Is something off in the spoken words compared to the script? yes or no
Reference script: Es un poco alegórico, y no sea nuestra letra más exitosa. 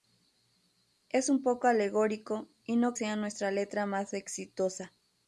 no